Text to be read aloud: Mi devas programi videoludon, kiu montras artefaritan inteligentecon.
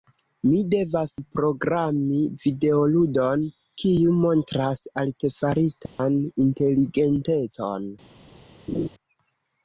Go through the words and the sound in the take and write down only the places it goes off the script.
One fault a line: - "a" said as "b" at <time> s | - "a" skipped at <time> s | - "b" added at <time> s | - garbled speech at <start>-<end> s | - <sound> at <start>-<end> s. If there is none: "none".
- dropout at 5.9-6.0 s
- laugh at 8.7-8.9 s